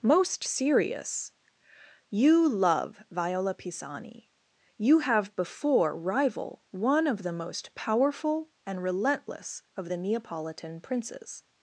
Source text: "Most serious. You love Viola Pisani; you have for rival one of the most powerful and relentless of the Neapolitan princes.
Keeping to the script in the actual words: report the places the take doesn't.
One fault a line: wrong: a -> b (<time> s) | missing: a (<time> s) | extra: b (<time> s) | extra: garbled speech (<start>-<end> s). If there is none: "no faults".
wrong: for -> before (5.4 s)